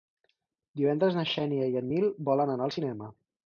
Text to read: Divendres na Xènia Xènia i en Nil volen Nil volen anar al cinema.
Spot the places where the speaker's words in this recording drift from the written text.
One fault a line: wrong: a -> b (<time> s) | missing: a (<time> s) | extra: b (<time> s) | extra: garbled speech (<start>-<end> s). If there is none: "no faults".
missing: Xènia (1.7 s)
missing: Nil volen (2.6 s)